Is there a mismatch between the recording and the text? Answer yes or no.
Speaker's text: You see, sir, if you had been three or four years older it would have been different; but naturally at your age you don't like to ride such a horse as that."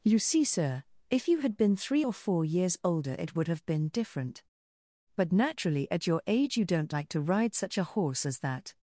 no